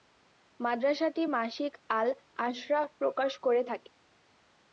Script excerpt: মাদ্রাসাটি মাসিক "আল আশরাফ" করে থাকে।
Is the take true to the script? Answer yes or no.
no